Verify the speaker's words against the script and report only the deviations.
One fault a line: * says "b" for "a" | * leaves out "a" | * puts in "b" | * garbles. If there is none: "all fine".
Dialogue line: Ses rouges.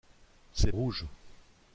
all fine